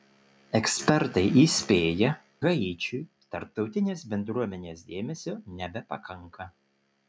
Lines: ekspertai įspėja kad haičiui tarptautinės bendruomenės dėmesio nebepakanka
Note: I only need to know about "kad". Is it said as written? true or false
false